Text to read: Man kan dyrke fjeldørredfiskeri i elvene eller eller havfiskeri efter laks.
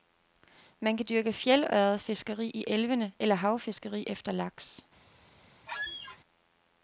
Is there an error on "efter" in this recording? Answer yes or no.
no